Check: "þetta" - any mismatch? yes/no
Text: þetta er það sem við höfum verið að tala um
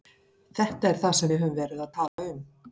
no